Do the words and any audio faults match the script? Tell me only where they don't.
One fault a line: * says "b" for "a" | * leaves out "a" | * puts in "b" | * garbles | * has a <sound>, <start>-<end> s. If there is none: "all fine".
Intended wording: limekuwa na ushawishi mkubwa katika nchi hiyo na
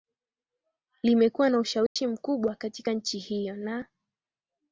* has a dropout, 1.9-2.0 s